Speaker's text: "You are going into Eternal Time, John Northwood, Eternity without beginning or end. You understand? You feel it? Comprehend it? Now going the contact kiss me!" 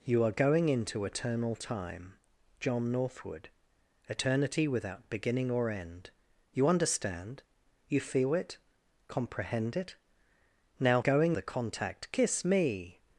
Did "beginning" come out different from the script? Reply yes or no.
no